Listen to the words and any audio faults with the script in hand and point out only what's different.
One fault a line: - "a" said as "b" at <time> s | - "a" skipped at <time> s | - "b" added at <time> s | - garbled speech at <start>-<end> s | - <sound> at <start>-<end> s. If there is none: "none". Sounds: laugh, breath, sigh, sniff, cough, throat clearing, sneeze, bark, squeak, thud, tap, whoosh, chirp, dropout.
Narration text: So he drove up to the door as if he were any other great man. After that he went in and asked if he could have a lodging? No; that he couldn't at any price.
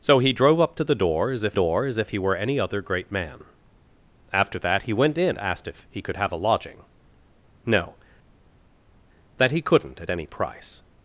- "door as if" added at 1.5 s
- "and" skipped at 5.4 s